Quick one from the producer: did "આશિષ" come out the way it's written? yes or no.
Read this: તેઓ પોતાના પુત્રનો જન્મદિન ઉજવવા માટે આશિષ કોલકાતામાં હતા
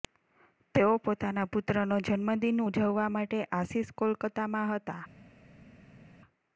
yes